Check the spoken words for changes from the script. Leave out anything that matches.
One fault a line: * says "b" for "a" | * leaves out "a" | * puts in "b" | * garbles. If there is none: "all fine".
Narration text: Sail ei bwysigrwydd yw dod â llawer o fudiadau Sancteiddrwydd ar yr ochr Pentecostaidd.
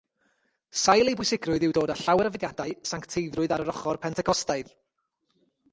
all fine